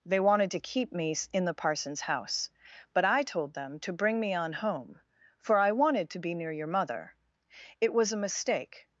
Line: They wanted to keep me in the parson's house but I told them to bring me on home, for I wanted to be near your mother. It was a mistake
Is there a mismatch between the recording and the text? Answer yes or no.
no